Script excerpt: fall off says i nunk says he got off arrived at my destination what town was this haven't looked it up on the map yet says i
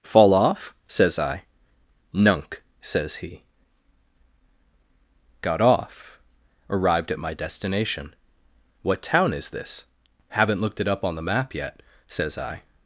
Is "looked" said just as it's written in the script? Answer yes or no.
yes